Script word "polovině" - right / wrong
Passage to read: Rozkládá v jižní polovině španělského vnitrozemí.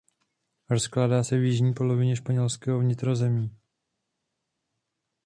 right